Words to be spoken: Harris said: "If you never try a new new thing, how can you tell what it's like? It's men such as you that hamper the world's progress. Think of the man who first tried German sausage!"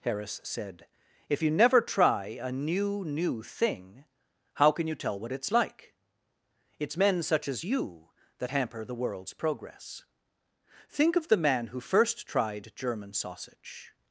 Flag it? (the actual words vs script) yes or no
no